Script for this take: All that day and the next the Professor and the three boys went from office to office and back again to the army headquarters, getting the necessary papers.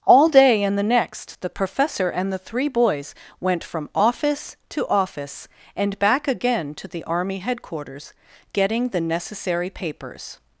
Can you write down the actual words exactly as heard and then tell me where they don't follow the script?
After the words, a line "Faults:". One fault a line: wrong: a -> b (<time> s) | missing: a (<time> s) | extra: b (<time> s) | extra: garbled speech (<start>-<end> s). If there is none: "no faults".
All day and the next the Professor and the three boys went from office to office and back again to the army headquarters, getting the necessary papers.
Faults:
missing: that (0.3 s)